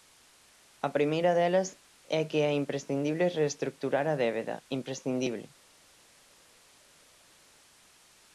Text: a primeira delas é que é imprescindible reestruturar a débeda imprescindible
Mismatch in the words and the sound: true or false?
false